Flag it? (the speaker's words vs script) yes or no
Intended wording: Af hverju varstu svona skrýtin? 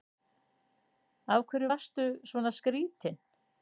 no